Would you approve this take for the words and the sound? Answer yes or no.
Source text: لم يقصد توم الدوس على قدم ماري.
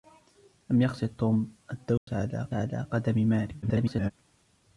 no